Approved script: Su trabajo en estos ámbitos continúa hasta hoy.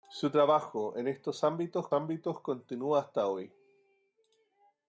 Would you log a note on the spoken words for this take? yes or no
yes